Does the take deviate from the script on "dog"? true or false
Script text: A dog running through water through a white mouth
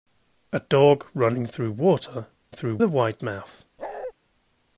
false